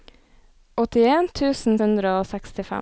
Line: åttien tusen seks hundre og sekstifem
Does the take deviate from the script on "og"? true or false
false